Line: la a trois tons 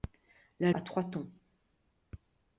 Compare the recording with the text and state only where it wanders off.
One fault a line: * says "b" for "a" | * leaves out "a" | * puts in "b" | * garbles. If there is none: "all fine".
all fine